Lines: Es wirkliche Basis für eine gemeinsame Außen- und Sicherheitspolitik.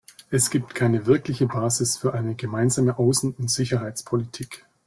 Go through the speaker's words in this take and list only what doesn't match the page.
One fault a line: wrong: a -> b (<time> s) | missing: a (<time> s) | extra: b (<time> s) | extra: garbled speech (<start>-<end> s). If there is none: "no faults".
extra: gibt keine (0.5 s)